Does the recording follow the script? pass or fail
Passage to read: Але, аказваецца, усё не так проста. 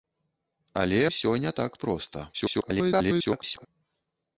fail